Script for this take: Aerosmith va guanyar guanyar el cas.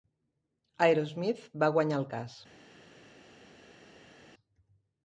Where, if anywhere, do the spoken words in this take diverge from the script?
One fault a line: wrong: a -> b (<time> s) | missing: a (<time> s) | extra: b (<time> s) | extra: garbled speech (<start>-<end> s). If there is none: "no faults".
missing: guanyar (2.0 s)